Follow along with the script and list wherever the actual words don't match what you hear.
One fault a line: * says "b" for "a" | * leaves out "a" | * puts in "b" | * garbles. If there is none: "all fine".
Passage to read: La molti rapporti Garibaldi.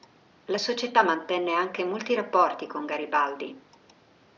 * puts in "società mantenne anche"
* puts in "con"